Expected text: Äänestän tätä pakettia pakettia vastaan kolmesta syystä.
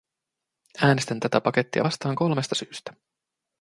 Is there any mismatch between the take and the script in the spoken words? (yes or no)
yes